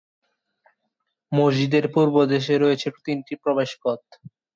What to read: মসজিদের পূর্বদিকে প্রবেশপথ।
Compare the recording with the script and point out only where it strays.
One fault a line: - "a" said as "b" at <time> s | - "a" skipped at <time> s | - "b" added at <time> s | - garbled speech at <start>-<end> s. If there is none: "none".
- "রয়েছে তিনটি" added at 2.6 s